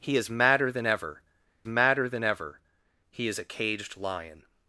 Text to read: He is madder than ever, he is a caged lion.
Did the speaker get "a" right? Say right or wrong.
right